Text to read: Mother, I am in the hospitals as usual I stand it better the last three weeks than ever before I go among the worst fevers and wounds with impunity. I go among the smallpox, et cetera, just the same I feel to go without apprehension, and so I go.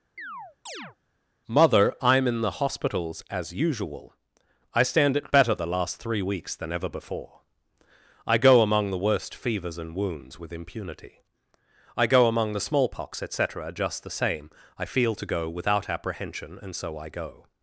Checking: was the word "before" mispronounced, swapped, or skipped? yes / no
no